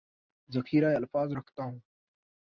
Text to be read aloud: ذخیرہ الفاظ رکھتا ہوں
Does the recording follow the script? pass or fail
pass